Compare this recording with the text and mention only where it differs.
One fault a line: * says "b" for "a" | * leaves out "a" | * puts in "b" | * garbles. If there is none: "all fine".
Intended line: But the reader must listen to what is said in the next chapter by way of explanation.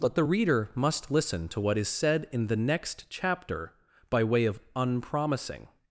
* says "unpromising" for "explanation"